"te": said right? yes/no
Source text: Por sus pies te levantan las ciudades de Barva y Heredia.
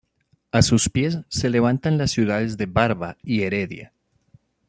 no